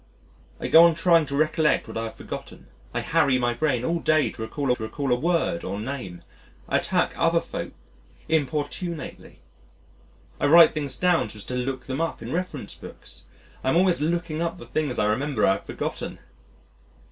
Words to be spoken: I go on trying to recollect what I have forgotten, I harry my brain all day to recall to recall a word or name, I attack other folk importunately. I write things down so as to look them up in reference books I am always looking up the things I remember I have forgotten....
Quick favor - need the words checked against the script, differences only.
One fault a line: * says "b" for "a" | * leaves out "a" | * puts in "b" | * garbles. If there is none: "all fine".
all fine